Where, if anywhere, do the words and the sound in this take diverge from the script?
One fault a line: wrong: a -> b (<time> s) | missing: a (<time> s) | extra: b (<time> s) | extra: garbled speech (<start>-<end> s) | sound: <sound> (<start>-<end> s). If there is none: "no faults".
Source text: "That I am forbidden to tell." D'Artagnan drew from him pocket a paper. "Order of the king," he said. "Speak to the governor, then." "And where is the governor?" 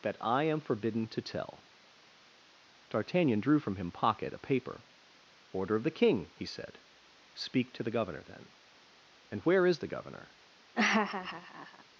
sound: laugh (10.7-11.8 s)